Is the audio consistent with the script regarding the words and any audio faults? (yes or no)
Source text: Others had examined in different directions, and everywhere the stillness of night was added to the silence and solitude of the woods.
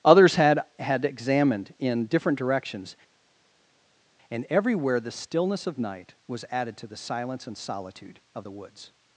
no